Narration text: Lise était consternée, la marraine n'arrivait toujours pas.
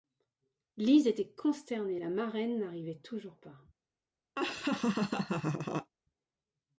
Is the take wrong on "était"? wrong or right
right